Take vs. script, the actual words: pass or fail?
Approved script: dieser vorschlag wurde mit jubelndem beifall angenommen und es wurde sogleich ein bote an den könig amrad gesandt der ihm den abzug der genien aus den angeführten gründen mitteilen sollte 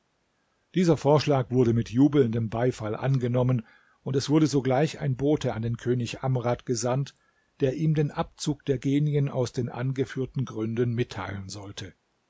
pass